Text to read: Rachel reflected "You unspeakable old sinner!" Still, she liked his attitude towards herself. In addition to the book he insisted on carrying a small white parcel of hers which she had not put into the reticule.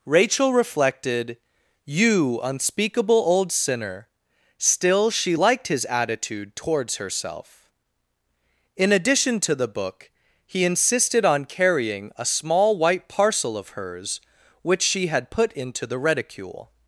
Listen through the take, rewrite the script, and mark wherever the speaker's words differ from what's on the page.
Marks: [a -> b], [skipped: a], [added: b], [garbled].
Rachel reflected "You unspeakable old sinner!" Still, she liked his attitude towards herself. In addition to the book he insisted on carrying a small white parcel of hers which she had [skipped: not] put into the reticule.